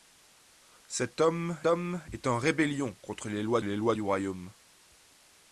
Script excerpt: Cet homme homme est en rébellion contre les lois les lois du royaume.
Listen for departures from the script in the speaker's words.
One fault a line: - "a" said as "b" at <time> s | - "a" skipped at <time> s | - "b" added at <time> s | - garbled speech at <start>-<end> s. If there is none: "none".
none